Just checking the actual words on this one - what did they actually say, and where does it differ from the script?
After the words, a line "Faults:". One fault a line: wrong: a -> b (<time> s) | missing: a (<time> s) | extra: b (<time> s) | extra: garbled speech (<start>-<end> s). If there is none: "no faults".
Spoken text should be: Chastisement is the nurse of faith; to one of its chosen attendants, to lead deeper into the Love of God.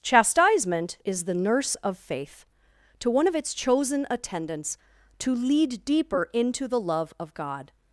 Chastisement is the nurse of faith; to one of its chosen attendants, to lead deeper into the Love of God.
Faults:
no faults